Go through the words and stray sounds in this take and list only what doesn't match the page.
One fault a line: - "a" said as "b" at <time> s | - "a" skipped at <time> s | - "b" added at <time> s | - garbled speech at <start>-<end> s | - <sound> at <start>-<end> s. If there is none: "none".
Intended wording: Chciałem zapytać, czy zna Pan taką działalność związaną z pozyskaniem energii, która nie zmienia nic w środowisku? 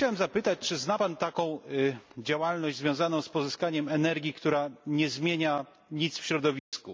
- dropout at 6.6-6.7 s